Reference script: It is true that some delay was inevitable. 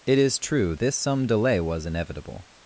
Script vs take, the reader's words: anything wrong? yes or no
yes